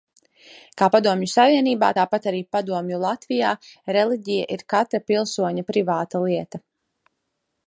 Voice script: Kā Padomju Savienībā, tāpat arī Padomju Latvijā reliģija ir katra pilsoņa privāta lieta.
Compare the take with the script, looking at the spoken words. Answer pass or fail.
pass